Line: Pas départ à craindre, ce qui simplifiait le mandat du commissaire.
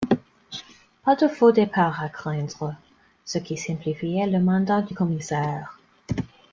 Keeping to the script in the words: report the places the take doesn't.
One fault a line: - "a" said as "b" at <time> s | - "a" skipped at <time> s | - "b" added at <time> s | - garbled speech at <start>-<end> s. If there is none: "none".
- "de faux" added at 1.1 s